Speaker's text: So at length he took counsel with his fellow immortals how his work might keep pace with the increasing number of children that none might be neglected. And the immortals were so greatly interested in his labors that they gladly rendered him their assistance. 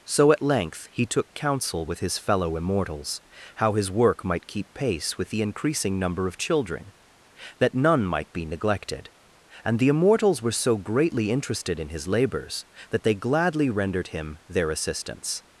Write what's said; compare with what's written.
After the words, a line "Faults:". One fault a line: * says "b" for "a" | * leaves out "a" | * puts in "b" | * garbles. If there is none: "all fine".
So at length he took counsel with his fellow immortals how his work might keep pace with the increasing number of children that none might be neglected. And the immortals were so greatly interested in his labors that they gladly rendered him their assistance.
Faults:
all fine